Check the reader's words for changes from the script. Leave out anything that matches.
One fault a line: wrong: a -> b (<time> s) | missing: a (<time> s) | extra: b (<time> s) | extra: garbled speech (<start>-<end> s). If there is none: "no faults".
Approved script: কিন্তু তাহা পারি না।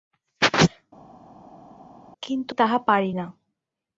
no faults